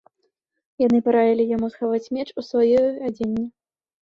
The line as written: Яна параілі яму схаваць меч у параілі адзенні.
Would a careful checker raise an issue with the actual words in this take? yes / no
yes